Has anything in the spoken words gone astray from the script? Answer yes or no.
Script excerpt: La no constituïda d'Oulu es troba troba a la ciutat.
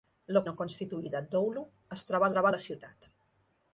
no